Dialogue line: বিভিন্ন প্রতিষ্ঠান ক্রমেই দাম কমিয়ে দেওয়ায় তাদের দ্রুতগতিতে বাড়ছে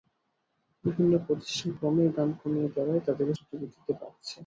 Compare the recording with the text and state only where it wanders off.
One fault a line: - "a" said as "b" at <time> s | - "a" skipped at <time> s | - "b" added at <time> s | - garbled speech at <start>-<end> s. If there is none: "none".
none